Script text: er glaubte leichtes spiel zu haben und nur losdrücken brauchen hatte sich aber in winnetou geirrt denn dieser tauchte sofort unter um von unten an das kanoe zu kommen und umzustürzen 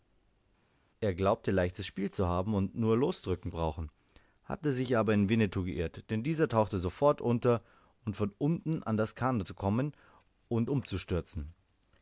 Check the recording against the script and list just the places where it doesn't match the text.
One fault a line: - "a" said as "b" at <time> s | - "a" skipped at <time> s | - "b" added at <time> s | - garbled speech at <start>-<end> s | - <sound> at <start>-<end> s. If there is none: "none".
none